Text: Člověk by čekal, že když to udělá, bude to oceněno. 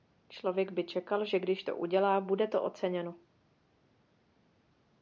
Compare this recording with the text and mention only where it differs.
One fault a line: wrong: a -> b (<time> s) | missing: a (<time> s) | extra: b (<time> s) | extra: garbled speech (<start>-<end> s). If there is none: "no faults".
no faults